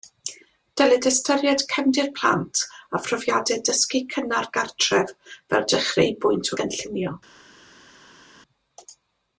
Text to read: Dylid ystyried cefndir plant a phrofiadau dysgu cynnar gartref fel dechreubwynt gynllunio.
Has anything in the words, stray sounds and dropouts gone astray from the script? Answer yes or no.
no